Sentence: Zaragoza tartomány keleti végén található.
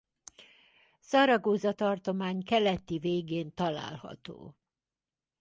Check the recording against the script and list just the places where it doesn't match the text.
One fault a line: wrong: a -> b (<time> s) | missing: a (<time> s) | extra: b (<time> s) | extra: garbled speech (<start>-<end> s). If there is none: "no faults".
no faults